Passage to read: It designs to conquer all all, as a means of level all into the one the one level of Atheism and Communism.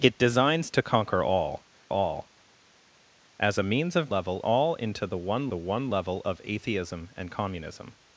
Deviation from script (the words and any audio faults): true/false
false